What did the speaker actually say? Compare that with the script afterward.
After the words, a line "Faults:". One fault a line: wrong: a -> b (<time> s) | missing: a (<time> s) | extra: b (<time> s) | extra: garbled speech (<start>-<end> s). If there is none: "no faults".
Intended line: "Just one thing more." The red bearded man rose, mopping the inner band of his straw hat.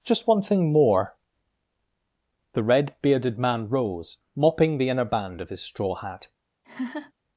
"Just one thing more." The red bearded man rose, mopping the inner band of his straw hat.
Faults:
no faults